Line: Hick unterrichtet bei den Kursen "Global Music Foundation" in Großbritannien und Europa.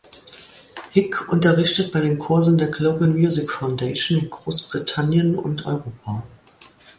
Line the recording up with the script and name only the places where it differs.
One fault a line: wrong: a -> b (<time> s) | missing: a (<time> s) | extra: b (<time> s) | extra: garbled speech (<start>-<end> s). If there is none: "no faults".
extra: der (2.6 s)